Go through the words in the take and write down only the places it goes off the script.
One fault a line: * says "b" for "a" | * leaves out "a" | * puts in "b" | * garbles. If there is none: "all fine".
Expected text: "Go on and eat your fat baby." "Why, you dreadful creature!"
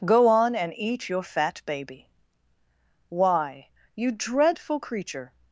all fine